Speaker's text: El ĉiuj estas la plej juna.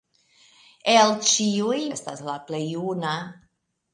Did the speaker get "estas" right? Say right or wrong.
right